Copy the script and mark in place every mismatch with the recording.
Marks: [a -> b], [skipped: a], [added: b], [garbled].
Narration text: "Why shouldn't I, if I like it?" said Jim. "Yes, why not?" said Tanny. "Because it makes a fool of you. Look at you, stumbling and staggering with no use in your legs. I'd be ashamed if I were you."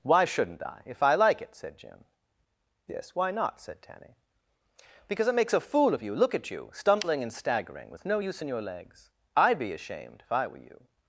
"Why shouldn't I, if I like it?" said Jim. "Yes, why not?" said Tanny. "Because it makes a fool of you. Look at you, stumbling and staggering with no use in your legs. I'd be ashamed if I were you."